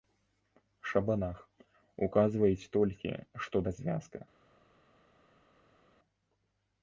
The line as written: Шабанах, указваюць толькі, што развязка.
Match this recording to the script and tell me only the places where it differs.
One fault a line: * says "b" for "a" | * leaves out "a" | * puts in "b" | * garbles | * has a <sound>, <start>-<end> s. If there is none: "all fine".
all fine